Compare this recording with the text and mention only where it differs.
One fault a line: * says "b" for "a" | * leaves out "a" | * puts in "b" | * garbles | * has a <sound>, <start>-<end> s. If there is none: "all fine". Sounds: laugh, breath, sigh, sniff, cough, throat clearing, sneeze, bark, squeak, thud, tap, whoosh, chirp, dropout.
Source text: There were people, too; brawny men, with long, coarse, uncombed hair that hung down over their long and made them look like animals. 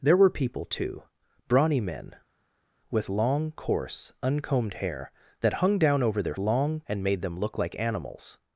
all fine